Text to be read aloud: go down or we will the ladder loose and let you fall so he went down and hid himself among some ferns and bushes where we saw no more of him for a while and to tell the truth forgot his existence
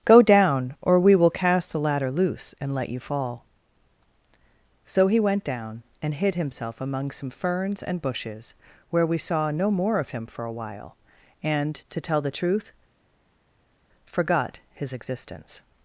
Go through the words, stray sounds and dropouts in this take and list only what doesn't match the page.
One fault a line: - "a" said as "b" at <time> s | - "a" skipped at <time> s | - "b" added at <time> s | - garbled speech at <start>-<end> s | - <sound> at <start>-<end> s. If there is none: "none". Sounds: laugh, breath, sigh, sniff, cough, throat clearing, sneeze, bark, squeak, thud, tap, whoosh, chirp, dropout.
- "cast" added at 1.3 s